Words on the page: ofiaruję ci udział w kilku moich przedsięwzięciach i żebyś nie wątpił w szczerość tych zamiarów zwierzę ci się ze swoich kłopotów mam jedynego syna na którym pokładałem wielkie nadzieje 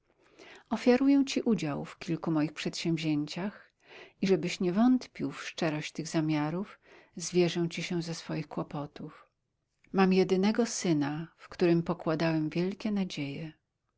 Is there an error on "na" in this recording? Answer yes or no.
yes